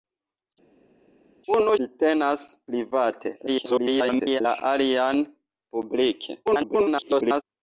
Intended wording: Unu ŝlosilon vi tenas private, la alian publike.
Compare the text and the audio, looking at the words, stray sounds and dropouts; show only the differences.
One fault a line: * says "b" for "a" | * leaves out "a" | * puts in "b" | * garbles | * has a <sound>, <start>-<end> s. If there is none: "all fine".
* leaves out "ŝlosilon"
* garbles
* garbles